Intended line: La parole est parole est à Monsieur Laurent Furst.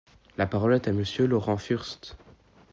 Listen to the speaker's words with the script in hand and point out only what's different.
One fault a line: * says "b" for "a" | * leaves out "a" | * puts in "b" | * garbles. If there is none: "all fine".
* leaves out "parole est"